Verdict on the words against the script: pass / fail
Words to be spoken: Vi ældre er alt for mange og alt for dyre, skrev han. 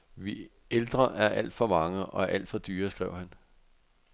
pass